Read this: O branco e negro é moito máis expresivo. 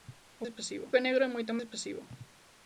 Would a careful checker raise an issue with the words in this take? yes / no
yes